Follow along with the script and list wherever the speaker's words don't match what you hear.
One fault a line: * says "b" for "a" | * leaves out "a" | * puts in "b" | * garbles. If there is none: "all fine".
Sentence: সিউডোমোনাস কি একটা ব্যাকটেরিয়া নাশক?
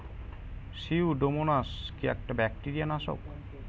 all fine